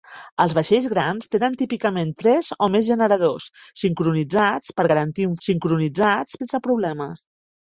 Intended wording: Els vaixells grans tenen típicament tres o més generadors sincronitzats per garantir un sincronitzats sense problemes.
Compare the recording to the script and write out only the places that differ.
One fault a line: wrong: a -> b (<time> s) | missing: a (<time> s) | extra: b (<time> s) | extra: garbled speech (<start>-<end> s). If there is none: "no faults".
no faults